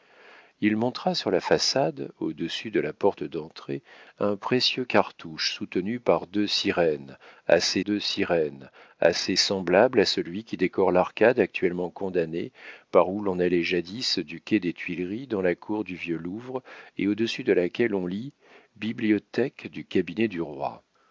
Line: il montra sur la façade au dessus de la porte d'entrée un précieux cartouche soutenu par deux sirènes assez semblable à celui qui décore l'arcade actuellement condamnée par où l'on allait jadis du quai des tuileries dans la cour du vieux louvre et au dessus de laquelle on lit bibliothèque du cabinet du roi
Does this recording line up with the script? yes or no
no